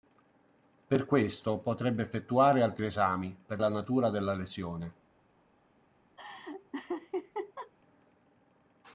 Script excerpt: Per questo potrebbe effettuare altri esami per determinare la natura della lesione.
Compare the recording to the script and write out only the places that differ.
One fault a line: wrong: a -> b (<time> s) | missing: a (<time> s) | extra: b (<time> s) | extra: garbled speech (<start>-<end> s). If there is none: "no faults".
missing: determinare (3.6 s)